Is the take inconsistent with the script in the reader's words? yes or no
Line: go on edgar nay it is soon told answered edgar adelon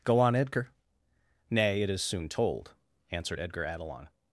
no